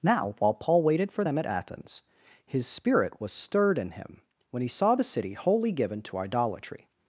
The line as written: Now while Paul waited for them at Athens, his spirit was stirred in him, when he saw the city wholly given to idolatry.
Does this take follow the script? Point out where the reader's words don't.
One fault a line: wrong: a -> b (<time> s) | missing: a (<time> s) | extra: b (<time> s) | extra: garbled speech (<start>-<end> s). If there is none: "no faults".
no faults